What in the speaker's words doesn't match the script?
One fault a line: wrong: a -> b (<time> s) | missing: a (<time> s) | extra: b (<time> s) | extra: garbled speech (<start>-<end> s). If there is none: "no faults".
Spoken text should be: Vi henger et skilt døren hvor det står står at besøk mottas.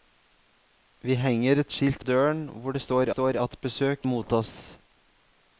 no faults